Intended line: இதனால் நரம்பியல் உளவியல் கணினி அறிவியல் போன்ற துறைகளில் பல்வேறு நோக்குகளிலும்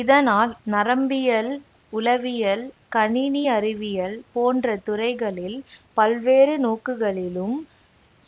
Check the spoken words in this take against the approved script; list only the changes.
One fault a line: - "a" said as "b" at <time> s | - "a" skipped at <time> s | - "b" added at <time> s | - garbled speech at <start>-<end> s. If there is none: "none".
none